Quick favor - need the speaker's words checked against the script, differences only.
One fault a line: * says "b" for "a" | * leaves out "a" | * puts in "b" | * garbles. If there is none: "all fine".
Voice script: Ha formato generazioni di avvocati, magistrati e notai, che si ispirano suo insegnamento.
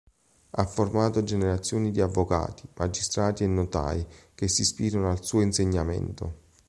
* puts in "al"